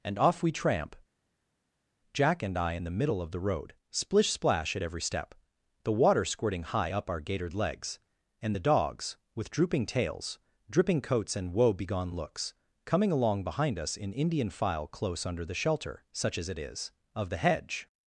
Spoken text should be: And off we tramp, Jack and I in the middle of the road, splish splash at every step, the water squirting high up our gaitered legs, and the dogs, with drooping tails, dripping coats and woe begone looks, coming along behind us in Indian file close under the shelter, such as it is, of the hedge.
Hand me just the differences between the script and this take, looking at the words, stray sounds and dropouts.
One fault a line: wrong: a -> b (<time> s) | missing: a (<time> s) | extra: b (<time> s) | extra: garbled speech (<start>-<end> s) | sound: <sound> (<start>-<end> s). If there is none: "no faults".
no faults